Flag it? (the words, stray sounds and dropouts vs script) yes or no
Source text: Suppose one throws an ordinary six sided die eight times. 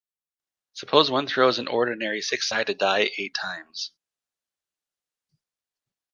no